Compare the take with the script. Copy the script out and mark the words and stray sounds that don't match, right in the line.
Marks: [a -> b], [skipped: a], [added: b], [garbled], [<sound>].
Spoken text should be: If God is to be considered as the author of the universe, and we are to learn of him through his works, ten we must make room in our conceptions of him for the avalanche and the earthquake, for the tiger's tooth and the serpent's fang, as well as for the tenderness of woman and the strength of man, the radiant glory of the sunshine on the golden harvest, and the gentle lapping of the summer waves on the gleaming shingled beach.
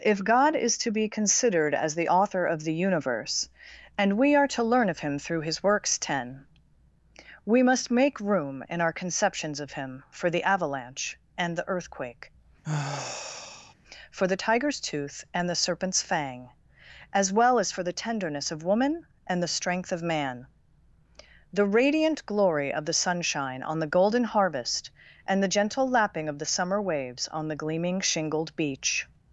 If God is to be considered as the author of the universe, and we are to learn of him through his works, ten we must make room in our conceptions of him for the avalanche and the earthquake, [sigh] for the tiger's tooth and the serpent's fang, as well as for the tenderness of woman and the strength of man, the radiant glory of the sunshine on the golden harvest, and the gentle lapping of the summer waves on the gleaming shingled beach.